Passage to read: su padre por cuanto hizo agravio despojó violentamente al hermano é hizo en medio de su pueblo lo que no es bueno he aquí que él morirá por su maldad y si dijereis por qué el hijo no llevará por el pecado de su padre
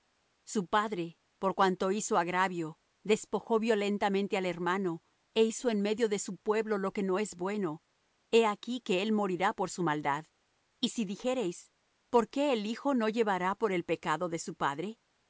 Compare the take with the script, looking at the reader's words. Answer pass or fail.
pass